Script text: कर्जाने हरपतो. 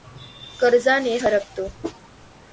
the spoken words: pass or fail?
pass